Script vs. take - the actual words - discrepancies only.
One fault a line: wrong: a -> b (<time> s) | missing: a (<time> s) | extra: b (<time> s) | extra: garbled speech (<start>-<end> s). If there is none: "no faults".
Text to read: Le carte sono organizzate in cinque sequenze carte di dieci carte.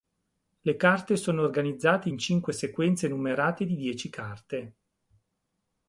wrong: carte -> numerate (3.1 s)